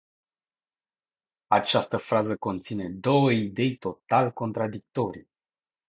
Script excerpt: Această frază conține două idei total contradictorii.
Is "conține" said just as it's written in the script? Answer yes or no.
yes